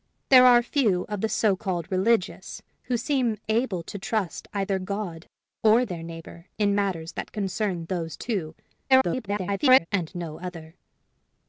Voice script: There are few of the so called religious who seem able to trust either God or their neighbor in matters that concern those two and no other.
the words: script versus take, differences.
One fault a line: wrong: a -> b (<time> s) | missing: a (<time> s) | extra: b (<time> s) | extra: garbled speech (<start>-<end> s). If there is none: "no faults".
extra: garbled speech (8.9-9.9 s)